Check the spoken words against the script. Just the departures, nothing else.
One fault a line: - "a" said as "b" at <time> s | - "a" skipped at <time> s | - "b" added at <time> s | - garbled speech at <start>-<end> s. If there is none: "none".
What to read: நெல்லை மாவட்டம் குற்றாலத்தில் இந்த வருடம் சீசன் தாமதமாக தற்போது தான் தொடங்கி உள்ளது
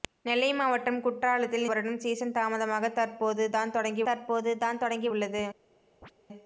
- "இந்த" skipped at 1.7 s
- "தற்போது தான் தொடங்கி" added at 4.0 s